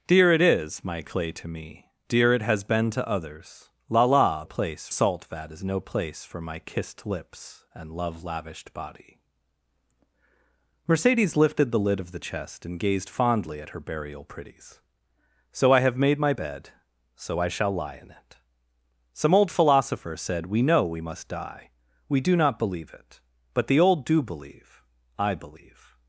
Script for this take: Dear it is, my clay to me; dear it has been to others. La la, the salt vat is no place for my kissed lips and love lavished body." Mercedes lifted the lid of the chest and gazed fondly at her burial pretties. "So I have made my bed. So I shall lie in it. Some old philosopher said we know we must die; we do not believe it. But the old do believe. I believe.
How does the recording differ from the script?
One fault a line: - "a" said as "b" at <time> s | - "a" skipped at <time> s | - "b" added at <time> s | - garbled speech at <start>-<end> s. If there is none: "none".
- "the" said as "place" at 4.4 s